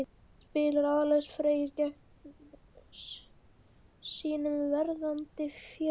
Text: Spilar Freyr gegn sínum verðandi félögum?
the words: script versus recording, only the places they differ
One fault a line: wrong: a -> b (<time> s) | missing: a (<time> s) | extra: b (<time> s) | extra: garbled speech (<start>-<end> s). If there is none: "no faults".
extra: Alex (1.0 s)